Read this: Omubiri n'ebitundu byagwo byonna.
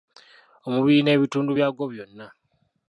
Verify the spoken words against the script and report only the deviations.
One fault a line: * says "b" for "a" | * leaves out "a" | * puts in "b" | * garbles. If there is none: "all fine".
all fine